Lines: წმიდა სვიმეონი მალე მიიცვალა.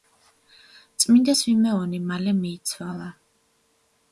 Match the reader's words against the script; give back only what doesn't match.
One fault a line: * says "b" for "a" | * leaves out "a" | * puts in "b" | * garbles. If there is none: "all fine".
all fine